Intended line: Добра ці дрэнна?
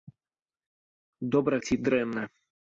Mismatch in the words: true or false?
false